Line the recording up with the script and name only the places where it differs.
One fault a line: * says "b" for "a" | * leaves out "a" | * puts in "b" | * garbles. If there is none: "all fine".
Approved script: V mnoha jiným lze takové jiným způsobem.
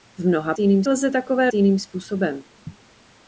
all fine